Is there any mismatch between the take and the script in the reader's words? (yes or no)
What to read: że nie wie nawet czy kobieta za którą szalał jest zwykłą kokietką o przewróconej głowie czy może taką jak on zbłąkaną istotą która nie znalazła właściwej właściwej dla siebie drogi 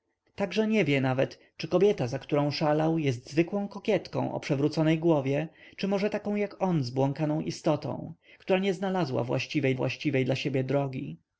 no